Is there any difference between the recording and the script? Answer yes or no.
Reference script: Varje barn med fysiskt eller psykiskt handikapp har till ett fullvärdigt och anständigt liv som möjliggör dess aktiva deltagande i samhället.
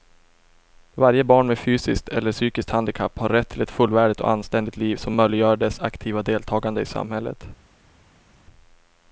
yes